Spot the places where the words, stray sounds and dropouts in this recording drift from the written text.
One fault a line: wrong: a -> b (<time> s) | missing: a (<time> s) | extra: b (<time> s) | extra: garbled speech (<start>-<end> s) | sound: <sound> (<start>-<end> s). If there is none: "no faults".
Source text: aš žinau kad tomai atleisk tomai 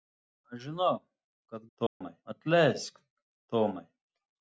sound: dropout (1.9-2.0 s)